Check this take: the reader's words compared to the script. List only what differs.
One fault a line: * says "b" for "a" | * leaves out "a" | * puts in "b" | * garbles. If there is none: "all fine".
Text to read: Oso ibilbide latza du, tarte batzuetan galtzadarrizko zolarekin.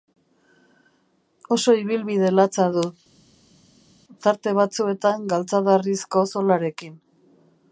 all fine